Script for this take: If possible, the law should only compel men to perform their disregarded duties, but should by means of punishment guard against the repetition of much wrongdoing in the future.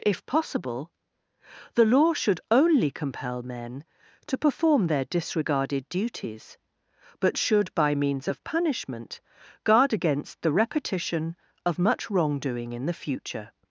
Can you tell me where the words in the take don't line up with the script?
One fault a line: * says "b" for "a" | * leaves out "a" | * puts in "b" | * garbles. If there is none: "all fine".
all fine